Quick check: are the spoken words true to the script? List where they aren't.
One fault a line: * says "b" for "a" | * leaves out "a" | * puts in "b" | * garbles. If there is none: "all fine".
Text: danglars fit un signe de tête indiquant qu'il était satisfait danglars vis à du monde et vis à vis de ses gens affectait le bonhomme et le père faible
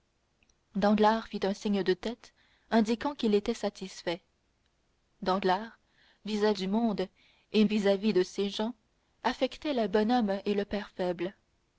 all fine